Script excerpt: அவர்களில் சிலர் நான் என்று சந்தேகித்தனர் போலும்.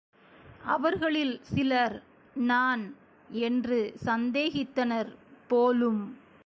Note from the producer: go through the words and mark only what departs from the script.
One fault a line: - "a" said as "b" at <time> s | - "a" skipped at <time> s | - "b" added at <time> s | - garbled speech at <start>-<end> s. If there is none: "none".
none